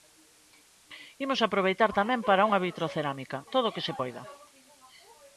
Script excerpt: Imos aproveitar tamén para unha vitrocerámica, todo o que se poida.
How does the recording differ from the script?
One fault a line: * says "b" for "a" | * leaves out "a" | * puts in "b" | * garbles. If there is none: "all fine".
all fine